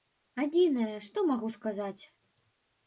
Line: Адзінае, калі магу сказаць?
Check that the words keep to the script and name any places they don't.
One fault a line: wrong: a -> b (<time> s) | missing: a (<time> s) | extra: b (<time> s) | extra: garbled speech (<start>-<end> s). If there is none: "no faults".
wrong: калі -> што (1.1 s)